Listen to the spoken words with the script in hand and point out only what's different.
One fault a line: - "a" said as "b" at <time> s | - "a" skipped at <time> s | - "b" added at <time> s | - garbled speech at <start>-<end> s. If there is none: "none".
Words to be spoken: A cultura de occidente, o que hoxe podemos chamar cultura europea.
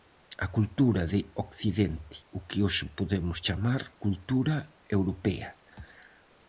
none